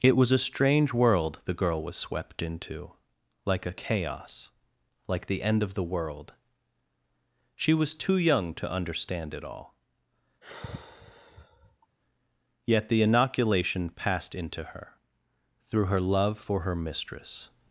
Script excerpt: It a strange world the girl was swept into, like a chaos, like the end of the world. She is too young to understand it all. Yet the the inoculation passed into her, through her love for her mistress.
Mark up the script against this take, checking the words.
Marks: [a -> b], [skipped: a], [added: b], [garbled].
It [added: was] a strange world the girl was swept into, like a chaos, like the end of the world. She [is -> was] too young to understand it all. Yet the [skipped: the] inoculation passed into her, through her love for her mistress.